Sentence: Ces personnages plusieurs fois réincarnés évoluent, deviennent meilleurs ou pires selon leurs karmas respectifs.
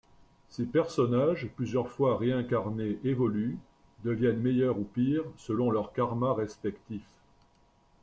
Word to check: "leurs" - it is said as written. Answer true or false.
true